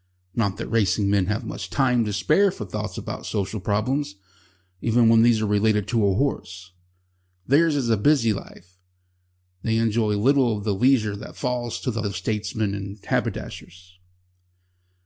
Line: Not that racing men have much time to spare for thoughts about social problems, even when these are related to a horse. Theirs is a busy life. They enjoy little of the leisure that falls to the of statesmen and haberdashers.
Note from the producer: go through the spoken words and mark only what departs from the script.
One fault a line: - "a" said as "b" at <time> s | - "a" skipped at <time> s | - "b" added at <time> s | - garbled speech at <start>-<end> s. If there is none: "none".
none